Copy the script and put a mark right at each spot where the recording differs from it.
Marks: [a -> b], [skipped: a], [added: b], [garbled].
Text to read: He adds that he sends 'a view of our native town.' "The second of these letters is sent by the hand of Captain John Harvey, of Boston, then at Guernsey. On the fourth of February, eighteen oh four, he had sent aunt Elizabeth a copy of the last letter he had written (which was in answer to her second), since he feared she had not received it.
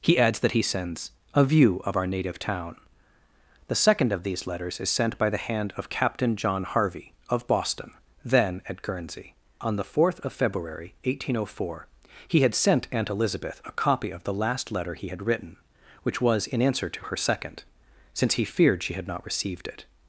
He adds that he sends 'a view of our native town.' "The second of these letters is sent by the hand of Captain John Harvey, of Boston, then at Guernsey. On the fourth of February, eighteen oh four, he had sent aunt Elizabeth a copy of the last letter he had written (which was in answer to her second), since he feared she had not received it.